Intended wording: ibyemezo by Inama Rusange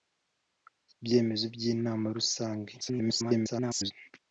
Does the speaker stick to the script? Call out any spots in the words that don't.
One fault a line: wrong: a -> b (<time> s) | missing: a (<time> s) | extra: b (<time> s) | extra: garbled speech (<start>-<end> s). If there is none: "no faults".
extra: garbled speech (2.8-3.9 s)